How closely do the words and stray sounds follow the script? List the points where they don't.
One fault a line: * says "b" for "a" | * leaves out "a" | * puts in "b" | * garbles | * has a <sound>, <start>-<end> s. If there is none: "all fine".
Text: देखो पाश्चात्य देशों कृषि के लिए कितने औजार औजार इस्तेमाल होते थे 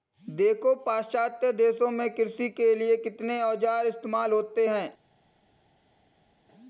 * puts in "में"
* leaves out "औजार"
* says "हैं" for "थे"